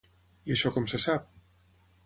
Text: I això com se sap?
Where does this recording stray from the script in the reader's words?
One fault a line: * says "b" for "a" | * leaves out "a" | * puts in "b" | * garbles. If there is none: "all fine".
all fine